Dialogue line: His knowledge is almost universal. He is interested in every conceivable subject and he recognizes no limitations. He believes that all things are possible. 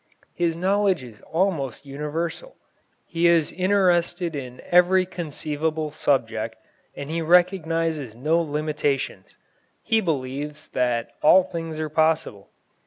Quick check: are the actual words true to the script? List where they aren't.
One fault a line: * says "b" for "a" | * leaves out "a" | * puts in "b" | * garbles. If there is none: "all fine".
all fine